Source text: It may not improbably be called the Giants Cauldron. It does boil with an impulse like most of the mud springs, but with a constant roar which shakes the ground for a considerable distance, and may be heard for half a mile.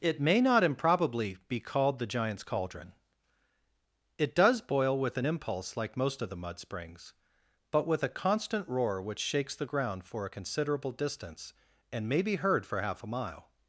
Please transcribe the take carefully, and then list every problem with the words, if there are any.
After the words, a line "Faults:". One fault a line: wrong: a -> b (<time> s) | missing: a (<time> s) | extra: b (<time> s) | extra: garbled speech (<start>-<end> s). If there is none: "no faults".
It may not improbably be called the Giants Cauldron. It does boil with an impulse like most of the mud springs, but with a constant roar which shakes the ground for a considerable distance, and may be heard for half a mile.
Faults:
no faults